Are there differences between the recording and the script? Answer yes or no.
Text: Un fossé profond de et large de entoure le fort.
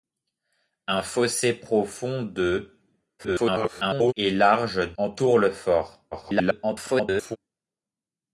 yes